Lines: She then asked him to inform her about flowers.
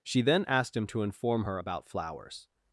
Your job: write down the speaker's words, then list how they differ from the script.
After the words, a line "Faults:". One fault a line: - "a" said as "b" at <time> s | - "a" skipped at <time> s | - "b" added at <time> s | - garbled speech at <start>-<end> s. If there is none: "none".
She then asked him to inform her about flowers.
Faults:
none